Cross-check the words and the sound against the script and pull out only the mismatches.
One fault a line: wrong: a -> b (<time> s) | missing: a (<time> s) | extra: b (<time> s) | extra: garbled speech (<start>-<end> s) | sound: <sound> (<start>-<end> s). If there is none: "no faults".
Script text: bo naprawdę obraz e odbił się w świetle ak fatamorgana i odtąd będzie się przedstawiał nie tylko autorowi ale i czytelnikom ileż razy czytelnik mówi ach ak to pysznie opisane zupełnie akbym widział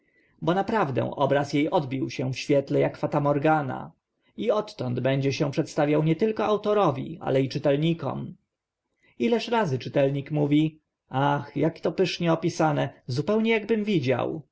no faults